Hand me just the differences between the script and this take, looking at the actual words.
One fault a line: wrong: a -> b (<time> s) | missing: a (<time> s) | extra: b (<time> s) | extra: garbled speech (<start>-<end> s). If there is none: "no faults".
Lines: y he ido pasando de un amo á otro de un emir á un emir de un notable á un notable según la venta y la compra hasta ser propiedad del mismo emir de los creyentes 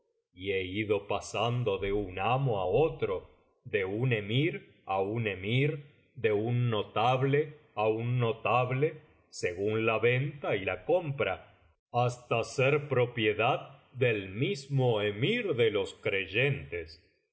no faults